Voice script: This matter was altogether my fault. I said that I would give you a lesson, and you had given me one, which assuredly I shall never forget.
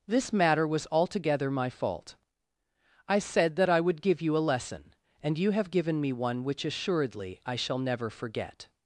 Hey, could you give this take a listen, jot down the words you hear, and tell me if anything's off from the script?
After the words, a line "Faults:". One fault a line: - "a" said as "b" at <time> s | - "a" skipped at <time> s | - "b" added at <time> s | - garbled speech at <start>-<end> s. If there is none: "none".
This matter was altogether my fault. I said that I would give you a lesson, and you have given me one, which assuredly I shall never forget.
Faults:
- "had" said as "have" at 5.5 s